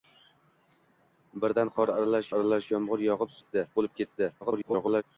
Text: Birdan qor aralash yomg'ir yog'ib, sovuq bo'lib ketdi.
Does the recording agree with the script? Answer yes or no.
no